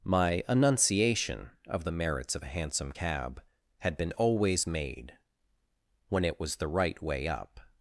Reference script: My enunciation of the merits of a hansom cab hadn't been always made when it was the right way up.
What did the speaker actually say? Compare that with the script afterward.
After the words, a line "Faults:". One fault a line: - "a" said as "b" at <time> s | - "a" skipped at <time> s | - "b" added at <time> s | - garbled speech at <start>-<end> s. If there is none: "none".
My enunciation of the merits of a hansom cab had been always made when it was the right way up.
Faults:
- "hadn't" said as "had" at 3.8 s